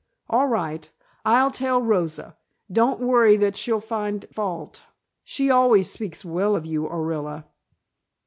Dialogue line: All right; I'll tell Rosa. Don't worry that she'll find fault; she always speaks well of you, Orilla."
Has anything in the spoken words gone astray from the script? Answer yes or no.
no